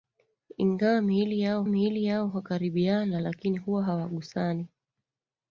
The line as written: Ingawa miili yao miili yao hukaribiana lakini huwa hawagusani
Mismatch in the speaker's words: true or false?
false